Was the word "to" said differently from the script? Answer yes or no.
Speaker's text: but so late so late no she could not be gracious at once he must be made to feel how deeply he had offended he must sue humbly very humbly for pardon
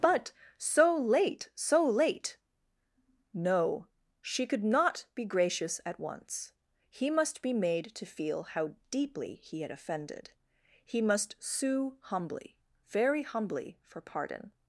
no